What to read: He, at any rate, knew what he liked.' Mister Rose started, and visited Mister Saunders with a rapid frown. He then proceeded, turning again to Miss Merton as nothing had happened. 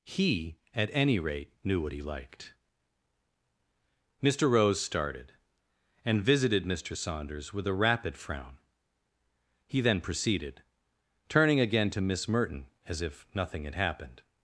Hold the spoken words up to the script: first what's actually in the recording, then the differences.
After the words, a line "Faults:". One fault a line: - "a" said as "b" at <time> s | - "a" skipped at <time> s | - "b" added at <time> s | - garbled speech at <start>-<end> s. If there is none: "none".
He, at any rate, knew what he liked.' Mister Rose started, and visited Mister Saunders with a rapid frown. He then proceeded, turning again to Miss Merton as if nothing had happened.
Faults:
- "if" added at 13.0 s